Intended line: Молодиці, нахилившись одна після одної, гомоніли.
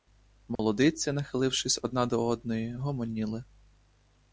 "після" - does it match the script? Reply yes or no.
no